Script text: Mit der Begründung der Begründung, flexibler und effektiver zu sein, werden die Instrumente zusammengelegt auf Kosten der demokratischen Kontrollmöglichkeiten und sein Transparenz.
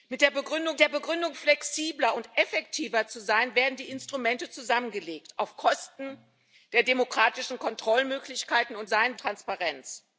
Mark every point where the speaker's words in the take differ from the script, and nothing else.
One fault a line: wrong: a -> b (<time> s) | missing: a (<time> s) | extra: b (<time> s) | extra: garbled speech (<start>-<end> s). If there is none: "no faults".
no faults